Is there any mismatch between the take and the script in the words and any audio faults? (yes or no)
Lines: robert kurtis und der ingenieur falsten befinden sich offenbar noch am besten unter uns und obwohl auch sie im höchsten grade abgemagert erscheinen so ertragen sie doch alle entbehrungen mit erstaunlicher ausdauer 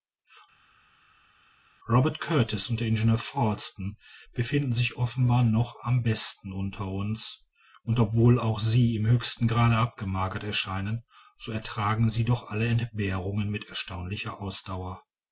no